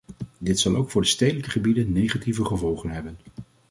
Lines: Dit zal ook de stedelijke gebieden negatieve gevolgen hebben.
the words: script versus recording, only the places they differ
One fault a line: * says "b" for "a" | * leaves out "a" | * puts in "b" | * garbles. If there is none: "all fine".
* puts in "voor"